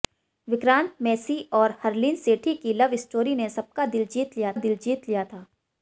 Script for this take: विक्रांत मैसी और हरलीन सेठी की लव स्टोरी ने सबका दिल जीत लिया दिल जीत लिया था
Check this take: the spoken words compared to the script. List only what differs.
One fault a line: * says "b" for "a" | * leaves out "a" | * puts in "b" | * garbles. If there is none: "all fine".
all fine